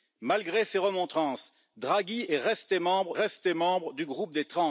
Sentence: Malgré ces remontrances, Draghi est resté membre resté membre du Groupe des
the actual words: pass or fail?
pass